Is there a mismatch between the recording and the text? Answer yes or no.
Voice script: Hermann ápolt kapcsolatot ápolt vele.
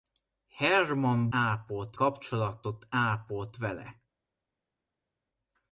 no